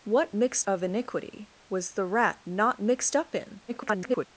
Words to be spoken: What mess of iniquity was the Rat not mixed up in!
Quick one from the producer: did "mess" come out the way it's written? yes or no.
no